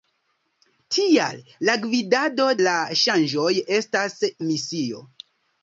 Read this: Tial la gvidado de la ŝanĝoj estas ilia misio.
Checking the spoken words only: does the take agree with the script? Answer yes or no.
no